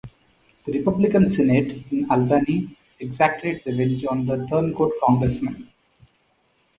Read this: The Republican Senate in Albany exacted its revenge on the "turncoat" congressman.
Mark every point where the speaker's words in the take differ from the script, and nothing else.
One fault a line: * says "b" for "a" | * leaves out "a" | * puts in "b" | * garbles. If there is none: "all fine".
all fine